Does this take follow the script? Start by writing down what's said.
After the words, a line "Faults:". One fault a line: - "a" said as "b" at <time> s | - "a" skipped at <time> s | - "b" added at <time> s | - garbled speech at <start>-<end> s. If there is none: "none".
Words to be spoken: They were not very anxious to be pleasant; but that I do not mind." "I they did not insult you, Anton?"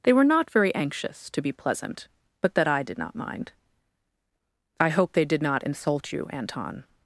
They were not very anxious to be pleasant; but that I did not mind." "I hope they did not insult you, Anton?"
Faults:
- "do" said as "did" at 2.8 s
- "hope" added at 4.9 s